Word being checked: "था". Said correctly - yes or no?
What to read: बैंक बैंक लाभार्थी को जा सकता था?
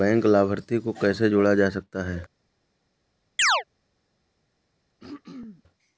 no